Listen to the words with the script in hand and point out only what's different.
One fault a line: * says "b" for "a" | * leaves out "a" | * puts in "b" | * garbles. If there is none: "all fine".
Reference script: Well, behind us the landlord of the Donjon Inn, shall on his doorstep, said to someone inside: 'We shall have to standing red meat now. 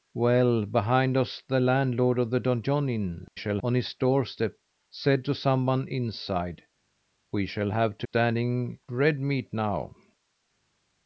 all fine